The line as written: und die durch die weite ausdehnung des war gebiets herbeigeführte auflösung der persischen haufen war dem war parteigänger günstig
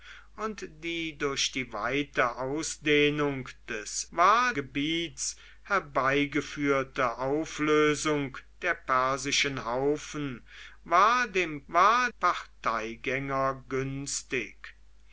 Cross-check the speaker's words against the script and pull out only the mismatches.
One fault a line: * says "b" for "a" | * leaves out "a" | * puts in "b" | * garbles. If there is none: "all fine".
all fine